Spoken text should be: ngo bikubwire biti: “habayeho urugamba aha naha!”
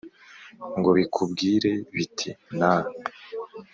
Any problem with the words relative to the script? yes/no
yes